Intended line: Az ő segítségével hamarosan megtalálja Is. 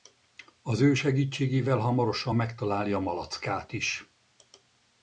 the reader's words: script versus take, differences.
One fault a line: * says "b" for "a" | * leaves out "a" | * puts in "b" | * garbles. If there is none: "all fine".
* puts in "Malackát"